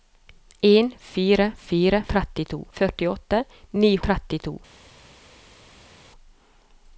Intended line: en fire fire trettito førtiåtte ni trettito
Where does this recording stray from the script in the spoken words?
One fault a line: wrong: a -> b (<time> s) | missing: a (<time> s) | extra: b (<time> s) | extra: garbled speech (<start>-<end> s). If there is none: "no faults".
no faults